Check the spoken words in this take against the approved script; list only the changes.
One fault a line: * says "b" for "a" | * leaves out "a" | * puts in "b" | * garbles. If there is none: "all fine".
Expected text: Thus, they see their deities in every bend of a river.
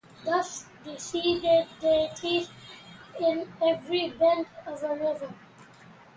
all fine